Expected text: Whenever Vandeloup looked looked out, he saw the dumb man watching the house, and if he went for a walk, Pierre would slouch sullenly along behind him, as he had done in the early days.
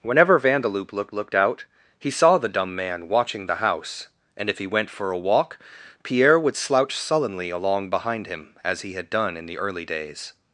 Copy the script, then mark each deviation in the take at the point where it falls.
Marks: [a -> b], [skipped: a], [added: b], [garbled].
Whenever Vandeloup looked looked out, he saw the dumb man watching the house, and if he went for a walk, Pierre would slouch sullenly along behind him, as he had done in the early days.